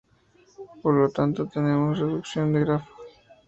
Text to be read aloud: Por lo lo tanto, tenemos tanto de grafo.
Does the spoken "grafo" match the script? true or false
true